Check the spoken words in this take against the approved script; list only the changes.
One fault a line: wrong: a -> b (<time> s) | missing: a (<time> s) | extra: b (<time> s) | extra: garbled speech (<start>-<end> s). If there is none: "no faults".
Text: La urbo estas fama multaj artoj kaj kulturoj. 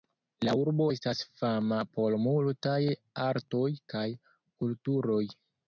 extra: por (2.0 s)